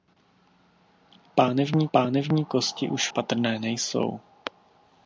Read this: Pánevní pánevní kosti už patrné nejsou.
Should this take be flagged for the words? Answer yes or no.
no